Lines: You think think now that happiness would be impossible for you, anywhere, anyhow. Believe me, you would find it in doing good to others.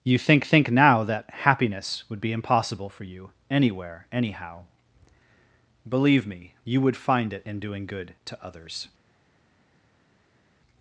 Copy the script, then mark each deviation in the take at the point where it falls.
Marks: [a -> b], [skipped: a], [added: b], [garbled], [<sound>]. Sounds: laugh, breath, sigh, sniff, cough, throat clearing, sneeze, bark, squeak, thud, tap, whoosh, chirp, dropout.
You think think now that happiness would be impossible for you, anywhere, anyhow. Believe me, you would find it in doing good to others.